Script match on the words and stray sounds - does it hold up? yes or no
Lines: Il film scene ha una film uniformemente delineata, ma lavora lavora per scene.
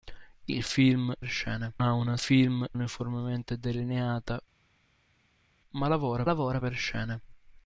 yes